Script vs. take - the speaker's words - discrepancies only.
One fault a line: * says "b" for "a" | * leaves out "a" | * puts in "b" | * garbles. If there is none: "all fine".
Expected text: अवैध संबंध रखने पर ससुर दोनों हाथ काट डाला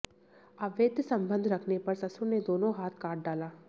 * puts in "ने"